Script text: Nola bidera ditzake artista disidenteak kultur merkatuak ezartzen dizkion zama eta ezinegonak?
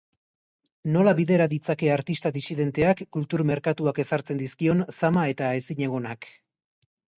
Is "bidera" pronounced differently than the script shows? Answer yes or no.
no